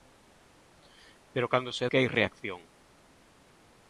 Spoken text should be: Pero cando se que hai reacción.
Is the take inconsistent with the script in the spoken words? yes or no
no